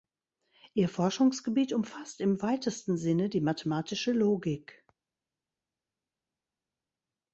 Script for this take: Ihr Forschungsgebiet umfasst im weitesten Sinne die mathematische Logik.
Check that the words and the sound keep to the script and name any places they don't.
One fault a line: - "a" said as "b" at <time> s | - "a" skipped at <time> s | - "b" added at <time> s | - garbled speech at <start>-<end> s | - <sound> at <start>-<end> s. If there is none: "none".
none